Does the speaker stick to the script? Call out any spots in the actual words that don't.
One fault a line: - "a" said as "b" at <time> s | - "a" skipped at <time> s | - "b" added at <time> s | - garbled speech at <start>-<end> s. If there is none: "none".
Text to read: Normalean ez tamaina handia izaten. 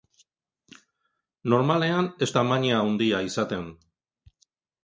none